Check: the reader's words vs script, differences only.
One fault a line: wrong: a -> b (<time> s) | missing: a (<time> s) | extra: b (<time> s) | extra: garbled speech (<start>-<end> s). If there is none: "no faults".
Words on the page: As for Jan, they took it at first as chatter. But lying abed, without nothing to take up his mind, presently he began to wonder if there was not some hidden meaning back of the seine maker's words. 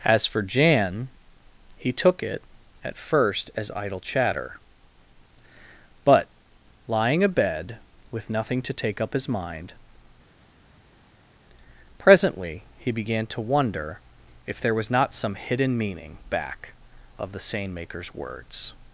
wrong: they -> he (1.8 s)
extra: idle (3.8 s)
wrong: without -> with (8.1 s)